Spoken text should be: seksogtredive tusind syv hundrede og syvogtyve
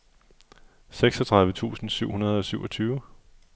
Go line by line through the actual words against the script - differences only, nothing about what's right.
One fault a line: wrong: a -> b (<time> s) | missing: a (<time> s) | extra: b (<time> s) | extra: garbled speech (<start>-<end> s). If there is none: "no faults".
no faults